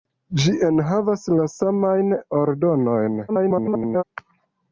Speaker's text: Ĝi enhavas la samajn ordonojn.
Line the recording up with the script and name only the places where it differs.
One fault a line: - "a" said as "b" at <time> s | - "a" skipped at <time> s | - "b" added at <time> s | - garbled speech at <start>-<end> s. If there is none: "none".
- garbled speech at 3.3-4.0 s